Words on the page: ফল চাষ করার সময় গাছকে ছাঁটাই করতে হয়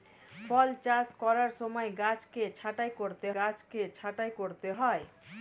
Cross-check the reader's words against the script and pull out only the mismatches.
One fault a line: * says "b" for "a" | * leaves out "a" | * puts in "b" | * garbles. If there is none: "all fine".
* puts in "গাছকে ছাঁটাই করতে"